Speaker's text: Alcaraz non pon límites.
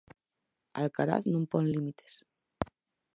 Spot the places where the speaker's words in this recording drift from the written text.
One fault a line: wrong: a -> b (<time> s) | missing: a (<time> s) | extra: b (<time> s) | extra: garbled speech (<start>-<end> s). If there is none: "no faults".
no faults